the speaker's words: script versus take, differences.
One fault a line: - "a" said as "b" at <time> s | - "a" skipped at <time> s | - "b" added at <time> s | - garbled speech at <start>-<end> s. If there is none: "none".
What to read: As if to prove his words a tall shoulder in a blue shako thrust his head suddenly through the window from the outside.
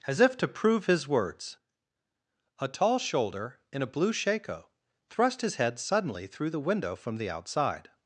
none